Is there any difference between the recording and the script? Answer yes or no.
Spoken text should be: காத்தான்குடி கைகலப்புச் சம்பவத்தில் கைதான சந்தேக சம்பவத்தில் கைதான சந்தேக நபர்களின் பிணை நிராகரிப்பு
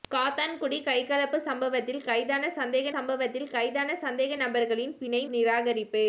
no